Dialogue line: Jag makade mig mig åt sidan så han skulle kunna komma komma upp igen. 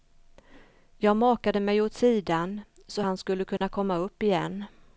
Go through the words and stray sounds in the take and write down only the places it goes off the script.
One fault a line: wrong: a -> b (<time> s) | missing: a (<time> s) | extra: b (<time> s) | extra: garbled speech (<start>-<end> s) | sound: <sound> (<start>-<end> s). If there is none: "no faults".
missing: mig (1.8 s)
sound: dropout (3.6-3.6 s)
missing: komma (4.0 s)